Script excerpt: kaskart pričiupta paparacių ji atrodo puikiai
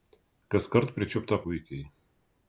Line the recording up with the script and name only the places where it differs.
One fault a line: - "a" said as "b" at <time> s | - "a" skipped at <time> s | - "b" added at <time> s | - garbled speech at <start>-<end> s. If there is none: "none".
- "paparacių ji atrodo" skipped at 1.4 s